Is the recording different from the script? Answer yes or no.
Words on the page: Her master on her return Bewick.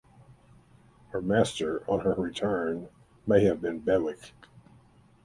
yes